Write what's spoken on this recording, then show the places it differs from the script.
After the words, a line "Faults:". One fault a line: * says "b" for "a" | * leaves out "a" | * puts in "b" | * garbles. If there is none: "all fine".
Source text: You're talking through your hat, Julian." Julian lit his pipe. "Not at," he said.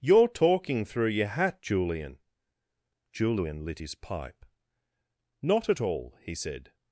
You're talking through your hat, Julian." Julian lit his pipe. "Not at all," he said.
Faults:
* puts in "all"